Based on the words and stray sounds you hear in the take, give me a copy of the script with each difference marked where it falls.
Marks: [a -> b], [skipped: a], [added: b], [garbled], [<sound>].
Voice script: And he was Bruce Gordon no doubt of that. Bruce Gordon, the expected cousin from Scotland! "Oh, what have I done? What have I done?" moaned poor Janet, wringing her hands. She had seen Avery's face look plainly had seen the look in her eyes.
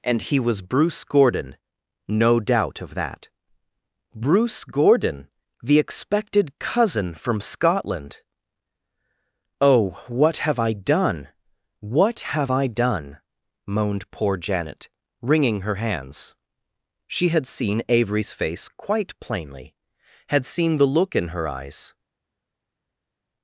And he was Bruce Gordon no doubt of that. Bruce Gordon, the expected cousin from Scotland! "Oh, what have I done? What have I done?" moaned poor Janet, wringing her hands. She had seen Avery's face [look -> quite] plainly had seen the look in her eyes.